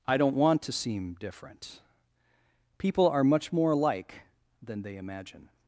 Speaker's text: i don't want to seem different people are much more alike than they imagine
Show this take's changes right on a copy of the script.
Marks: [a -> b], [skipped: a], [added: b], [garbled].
i don't want to seem different people are much more alike than they imagine